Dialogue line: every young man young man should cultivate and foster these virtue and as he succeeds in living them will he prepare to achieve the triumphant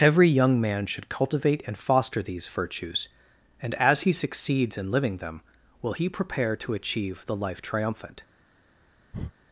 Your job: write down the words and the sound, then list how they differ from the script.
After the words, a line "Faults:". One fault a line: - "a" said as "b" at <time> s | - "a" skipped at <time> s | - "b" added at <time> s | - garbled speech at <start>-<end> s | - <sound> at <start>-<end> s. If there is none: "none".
every young man should cultivate and foster these virtues and as he succeeds in living them will he prepare to achieve the life triumphant
Faults:
- "young man" skipped at 0.9 s
- "virtue" said as "virtues" at 2.5 s
- "life" added at 7.3 s
- breath at 9.1-9.3 s